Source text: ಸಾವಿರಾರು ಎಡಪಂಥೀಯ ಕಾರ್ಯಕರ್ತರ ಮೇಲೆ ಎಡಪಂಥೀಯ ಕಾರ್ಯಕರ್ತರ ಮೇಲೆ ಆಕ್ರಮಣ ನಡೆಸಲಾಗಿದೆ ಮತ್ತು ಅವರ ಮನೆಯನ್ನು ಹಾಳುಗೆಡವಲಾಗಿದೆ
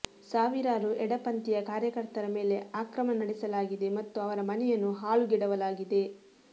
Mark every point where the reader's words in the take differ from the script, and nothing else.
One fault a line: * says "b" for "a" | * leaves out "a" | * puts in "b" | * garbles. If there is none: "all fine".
* leaves out "ಎಡಪಂಥೀಯ ಕಾರ್ಯಕರ್ತರ ಮೇಲೆ"